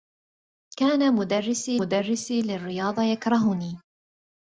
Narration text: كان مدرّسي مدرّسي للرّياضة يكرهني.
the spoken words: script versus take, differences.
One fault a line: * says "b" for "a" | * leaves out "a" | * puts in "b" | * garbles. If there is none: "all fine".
all fine